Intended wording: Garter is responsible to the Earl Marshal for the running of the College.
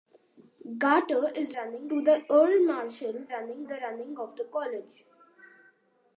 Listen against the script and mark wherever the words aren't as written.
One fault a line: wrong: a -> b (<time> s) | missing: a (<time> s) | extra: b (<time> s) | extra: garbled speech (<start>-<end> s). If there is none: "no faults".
wrong: responsible -> running (1.6 s)
wrong: for -> running (3.3 s)